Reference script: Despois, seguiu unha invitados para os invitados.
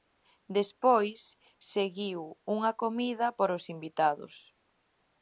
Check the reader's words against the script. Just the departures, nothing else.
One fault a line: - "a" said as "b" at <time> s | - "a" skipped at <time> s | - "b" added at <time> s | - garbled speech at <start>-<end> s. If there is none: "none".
- "invitados" said as "comida" at 2.8 s